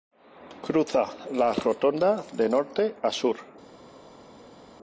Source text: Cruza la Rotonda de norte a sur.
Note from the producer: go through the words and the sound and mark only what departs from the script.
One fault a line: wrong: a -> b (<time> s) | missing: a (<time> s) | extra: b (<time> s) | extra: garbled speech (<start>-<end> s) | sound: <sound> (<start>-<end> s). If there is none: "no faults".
no faults